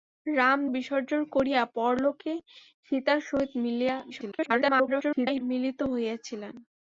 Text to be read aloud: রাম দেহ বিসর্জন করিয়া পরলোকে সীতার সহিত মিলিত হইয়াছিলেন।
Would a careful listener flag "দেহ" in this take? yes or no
yes